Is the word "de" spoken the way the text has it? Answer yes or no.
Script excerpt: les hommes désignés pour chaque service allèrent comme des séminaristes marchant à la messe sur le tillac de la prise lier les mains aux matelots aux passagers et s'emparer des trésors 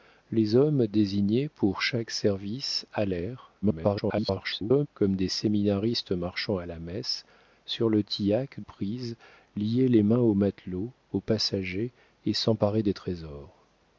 no